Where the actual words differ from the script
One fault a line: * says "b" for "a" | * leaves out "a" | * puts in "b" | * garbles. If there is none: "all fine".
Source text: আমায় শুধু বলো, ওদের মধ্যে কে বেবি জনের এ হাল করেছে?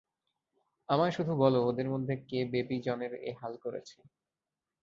all fine